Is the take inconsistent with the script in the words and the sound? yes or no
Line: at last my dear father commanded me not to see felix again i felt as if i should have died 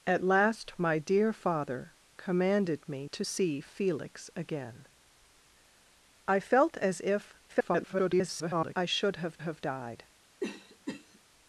yes